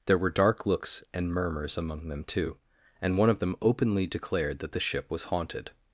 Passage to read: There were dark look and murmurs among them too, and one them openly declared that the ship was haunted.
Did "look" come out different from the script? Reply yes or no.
yes